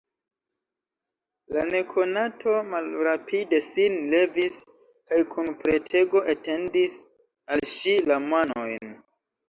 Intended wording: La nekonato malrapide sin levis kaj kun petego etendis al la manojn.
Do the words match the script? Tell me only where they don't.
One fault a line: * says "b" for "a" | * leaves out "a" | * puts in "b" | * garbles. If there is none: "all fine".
* puts in "ŝi"